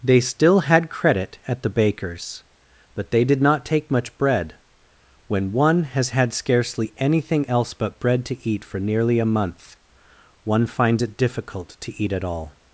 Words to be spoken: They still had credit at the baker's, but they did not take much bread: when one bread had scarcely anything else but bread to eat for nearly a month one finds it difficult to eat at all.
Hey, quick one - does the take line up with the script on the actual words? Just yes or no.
no